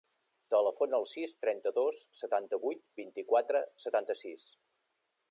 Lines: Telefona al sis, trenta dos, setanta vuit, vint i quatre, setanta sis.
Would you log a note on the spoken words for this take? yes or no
no